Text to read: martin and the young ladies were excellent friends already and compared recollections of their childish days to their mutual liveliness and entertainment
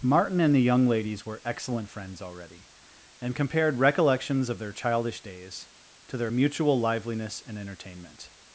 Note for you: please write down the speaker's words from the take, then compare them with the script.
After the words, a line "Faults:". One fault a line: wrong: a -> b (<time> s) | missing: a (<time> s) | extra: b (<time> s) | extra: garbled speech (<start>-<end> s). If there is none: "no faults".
martin and the young ladies were excellent friends already and compared recollections of their childish days to their mutual liveliness and entertainment
Faults:
no faults